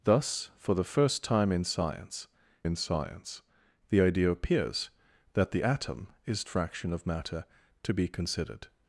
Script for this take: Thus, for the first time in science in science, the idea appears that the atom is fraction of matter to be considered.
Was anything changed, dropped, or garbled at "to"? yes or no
no